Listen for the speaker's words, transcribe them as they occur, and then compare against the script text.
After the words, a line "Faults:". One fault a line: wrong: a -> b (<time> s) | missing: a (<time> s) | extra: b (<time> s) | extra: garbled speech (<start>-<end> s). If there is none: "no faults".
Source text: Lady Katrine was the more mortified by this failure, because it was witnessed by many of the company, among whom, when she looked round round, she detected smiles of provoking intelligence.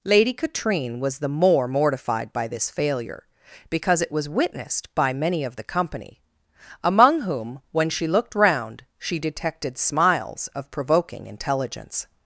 Lady Katrine was the more mortified by this failure, because it was witnessed by many of the company, among whom, when she looked round, she detected smiles of provoking intelligence.
Faults:
missing: round (8.8 s)